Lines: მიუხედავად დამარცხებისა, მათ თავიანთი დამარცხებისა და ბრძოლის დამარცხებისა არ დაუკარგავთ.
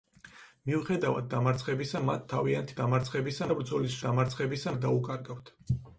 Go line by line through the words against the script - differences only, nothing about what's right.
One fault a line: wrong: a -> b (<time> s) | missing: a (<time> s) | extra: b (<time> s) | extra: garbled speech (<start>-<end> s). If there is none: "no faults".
no faults